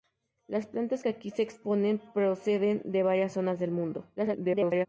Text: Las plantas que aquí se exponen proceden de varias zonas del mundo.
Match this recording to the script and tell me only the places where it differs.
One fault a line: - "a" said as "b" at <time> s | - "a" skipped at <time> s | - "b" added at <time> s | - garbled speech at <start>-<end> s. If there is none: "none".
- garbled speech at 4.2-4.9 s